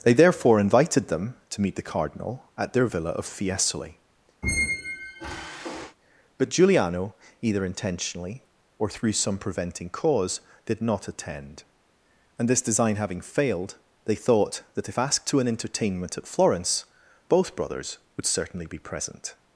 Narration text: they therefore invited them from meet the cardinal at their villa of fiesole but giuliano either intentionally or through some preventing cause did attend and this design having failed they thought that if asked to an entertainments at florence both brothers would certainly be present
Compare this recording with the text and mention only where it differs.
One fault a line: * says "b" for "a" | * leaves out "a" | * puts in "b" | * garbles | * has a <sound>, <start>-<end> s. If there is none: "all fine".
* says "to" for "from"
* has a squeak, 4.4-6.0 s
* puts in "not"
* says "entertainment" for "entertainments"